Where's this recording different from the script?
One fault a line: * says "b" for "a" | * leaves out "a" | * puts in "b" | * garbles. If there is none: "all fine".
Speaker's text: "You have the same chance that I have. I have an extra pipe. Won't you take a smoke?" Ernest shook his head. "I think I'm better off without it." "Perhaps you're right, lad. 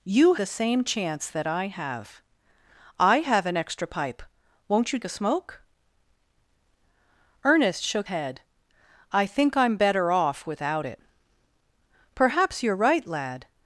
* leaves out "have"
* leaves out "take"
* leaves out "his"